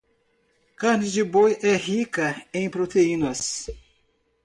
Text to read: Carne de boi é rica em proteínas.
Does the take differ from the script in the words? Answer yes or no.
no